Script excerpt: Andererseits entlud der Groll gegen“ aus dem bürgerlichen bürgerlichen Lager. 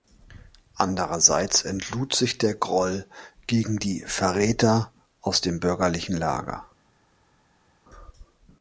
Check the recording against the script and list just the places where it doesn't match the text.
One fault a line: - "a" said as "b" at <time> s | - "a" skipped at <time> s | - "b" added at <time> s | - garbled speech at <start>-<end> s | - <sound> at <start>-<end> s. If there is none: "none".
- "sich" added at 2.1 s
- "die Verräter" added at 3.8 s
- "bürgerlichen" skipped at 6.2 s